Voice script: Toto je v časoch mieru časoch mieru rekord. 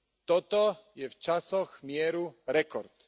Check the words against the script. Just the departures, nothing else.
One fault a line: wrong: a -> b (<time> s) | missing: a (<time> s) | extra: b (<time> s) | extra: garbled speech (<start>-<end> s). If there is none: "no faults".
missing: časoch mieru (2.4 s)